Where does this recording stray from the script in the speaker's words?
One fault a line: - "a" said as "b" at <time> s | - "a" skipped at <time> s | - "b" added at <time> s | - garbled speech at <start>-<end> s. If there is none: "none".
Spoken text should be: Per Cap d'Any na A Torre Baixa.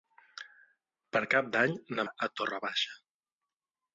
none